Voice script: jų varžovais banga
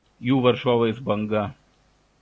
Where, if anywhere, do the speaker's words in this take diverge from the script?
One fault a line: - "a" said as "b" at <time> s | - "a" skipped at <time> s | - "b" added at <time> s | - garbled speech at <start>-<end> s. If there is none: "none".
none